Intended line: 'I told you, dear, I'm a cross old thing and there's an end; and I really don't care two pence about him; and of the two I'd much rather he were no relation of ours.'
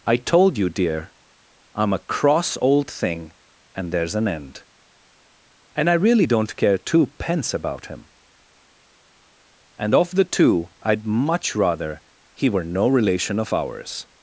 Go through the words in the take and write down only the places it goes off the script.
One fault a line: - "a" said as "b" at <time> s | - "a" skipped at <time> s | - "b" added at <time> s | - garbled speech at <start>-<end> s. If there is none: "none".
none